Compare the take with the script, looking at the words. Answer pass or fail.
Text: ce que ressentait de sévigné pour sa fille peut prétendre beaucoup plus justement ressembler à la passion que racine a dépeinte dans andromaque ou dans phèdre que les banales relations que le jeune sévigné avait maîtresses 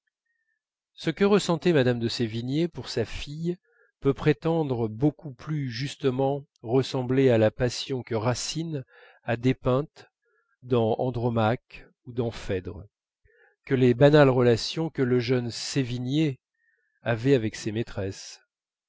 fail